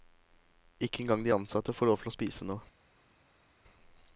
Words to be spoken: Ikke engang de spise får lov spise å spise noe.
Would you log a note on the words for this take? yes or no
yes